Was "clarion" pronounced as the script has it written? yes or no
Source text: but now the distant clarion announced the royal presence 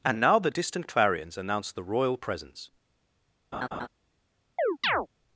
no